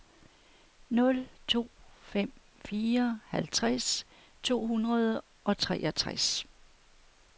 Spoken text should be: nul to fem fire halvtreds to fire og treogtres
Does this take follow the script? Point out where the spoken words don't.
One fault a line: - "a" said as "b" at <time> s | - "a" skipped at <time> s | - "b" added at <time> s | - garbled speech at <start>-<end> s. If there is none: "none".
- "fire" said as "hundrede" at 4.7 s